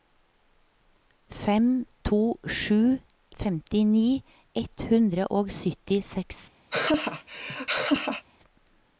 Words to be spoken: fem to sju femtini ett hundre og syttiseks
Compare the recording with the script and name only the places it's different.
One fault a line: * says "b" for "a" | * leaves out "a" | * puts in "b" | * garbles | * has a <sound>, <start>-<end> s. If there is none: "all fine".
* has a laugh, 6.7-8.2 s